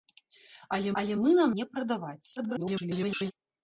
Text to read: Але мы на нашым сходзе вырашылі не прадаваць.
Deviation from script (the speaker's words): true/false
true